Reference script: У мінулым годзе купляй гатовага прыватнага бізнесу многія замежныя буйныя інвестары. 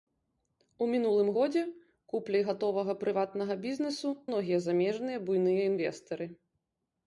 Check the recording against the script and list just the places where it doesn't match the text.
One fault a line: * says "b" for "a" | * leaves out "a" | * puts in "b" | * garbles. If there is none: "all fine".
all fine